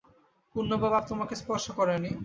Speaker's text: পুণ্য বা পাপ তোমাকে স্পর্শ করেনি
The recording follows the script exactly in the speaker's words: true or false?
true